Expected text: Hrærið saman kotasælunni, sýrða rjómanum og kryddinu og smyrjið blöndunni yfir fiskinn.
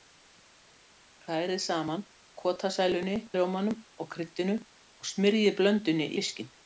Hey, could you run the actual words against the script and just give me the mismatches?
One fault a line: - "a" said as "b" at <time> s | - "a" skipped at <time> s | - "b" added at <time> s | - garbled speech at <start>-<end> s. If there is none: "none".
- "sýrða" skipped at 3.2 s
- "yfir" skipped at 6.1 s